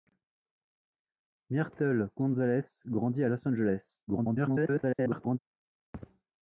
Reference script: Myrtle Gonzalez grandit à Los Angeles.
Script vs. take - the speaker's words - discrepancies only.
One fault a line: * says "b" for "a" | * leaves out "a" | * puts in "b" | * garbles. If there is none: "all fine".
* garbles